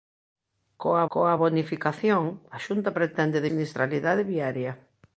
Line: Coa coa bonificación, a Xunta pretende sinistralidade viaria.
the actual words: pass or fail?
pass